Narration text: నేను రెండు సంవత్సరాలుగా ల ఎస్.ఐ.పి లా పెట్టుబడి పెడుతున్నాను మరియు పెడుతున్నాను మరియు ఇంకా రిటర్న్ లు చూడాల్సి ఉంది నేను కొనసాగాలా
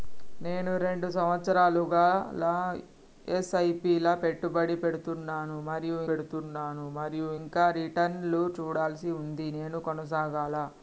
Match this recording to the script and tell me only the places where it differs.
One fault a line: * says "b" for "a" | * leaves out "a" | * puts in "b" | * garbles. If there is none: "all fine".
all fine